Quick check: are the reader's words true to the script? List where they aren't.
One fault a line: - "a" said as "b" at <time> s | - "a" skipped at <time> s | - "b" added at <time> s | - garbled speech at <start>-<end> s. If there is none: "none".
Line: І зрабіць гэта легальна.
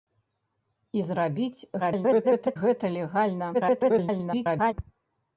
- garbled speech at 1.8-2.6 s
- garbled speech at 3.5-4.7 s